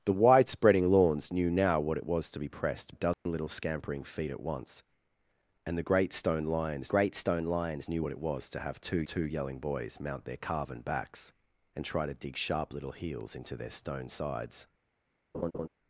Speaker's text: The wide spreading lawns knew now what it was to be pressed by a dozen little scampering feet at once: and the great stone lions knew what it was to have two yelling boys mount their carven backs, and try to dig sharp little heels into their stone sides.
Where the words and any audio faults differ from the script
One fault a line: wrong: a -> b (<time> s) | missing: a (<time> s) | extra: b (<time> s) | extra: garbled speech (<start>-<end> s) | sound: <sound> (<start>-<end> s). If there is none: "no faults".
missing: by (3.0 s)
sound: dropout (3.1-3.3 s)
extra: great stone lions (6.9 s)
extra: two (9.0 s)
sound: laugh (15.3-15.7 s)